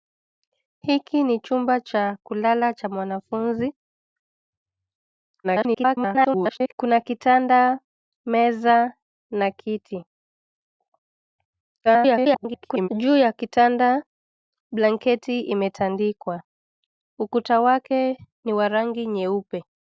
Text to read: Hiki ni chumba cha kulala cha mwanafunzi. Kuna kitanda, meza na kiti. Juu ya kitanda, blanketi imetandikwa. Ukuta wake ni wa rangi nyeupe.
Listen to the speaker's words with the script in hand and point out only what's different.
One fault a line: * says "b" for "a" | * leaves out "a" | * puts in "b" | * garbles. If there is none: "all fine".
* garbles
* garbles